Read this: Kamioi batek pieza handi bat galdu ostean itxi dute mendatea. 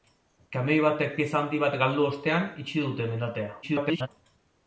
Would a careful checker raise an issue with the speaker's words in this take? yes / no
yes